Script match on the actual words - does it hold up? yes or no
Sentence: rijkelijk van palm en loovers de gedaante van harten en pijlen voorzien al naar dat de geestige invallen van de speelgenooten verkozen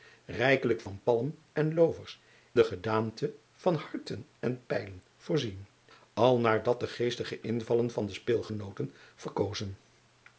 yes